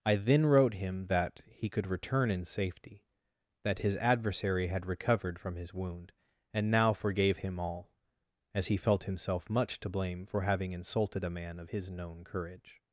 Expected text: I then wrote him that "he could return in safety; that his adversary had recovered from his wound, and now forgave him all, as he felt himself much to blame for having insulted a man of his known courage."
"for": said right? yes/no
yes